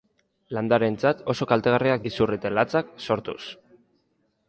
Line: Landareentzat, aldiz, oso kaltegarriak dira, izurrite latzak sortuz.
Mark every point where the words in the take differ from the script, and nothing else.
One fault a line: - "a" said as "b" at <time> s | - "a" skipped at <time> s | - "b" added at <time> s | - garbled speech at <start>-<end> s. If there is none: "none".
- "aldiz" skipped at 1.2 s
- "dira" skipped at 2.0 s